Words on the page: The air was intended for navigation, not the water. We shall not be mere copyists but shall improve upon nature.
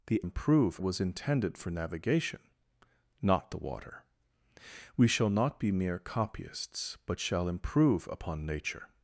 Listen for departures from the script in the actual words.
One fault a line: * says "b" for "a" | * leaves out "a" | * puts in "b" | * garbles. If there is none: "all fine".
* says "improve" for "air"